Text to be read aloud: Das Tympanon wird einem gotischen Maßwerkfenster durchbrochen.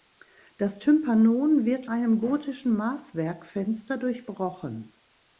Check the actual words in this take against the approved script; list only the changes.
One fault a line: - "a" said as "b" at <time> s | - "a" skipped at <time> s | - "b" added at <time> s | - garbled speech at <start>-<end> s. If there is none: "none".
none